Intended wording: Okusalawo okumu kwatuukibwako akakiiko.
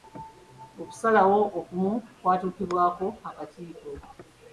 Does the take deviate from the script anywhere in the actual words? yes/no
no